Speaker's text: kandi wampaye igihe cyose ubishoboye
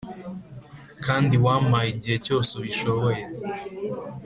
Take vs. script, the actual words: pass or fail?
pass